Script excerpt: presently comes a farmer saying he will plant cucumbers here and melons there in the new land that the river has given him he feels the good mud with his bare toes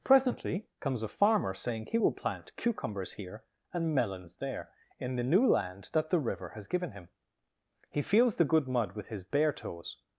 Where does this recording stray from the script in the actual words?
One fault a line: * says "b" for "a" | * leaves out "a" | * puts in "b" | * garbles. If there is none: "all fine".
all fine